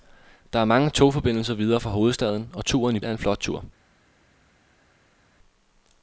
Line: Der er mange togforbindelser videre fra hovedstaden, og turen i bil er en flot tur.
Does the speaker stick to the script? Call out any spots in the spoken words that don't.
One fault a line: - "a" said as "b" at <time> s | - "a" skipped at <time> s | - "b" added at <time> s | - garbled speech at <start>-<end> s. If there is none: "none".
- "bil" skipped at 3.0 s